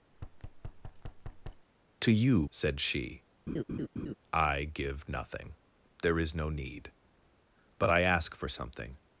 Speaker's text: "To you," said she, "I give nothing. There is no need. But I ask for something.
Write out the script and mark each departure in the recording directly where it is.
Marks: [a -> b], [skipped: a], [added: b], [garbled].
"To you," said she, "I give nothing. There is no need. But I ask for something.